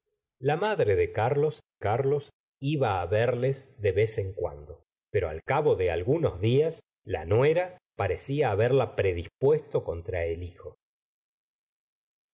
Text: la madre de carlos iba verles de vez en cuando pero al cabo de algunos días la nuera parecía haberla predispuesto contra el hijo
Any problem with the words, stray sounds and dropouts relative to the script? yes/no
yes